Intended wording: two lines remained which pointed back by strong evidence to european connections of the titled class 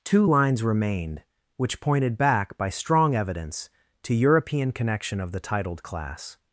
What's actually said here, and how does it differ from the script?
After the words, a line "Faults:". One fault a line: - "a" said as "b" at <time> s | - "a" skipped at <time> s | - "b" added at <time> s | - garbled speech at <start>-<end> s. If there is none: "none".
two lines remained which pointed back by strong evidence to european connection of the titled class
Faults:
- "connections" said as "connection" at 4.7 s